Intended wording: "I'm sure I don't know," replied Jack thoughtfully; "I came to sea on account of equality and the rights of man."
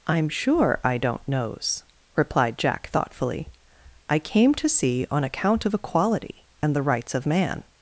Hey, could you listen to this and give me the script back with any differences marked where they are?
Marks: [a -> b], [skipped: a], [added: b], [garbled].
"I'm sure I don't [know," -> knows] replied Jack thoughtfully; "I came to sea on account of equality and the rights of man."